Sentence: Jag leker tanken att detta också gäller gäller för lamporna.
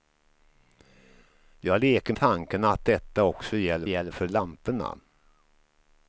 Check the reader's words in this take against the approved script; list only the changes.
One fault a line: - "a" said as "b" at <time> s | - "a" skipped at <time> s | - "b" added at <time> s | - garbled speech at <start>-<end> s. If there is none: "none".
none